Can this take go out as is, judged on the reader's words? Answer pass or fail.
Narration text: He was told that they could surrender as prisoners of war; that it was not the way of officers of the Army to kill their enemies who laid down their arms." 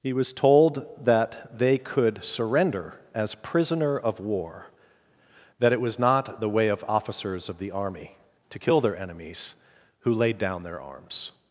fail